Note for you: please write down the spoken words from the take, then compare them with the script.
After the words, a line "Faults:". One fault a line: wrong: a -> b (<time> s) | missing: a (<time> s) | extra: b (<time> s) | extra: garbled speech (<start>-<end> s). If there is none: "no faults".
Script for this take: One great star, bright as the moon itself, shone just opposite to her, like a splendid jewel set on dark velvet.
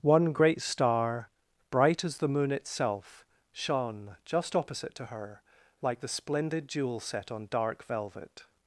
One great star, bright as the moon itself, shone just opposite to her, like the splendid jewel set on dark velvet.
Faults:
wrong: a -> the (6.0 s)